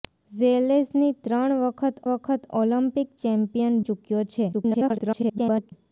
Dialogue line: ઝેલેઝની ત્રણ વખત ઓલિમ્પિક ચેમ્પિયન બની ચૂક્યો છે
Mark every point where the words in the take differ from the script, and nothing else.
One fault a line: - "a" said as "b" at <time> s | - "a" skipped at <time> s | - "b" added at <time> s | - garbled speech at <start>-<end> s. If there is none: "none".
- "વખત" added at 2.1 s
- "બની" skipped at 3.7 s
- garbled speech at 4.5-5.7 s